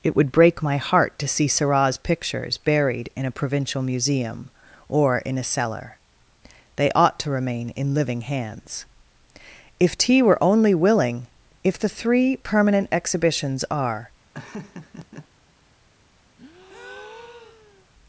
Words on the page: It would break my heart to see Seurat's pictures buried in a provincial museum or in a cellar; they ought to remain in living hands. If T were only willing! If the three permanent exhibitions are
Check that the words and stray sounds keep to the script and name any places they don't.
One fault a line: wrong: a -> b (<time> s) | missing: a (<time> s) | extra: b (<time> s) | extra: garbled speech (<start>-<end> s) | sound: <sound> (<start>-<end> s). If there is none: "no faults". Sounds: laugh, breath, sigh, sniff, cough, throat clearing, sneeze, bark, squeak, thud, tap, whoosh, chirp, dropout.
sound: laugh (14.3-15.3 s)
sound: breath (16.4-17.9 s)